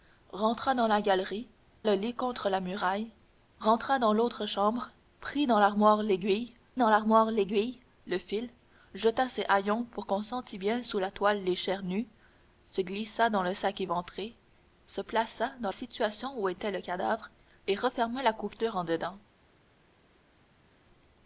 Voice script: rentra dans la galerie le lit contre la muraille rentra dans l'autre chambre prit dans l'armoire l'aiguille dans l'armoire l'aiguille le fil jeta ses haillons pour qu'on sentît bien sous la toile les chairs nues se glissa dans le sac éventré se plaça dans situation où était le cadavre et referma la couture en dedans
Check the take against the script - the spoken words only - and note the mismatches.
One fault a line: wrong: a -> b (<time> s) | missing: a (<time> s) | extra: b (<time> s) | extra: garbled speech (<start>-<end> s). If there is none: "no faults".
no faults